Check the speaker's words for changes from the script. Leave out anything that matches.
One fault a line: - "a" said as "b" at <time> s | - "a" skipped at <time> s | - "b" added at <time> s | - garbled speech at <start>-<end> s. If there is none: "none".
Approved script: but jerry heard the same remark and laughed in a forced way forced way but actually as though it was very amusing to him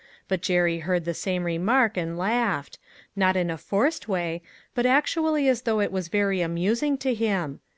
- "not" added at 3.2 s
- "forced way" skipped at 4.4 s